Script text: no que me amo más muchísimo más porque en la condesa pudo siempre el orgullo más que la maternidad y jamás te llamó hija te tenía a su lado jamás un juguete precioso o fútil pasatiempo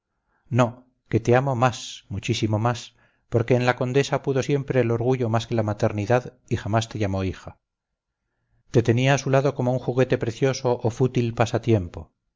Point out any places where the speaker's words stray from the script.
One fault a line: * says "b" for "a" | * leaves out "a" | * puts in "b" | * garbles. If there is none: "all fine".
* says "te" for "me"
* says "como" for "jamás"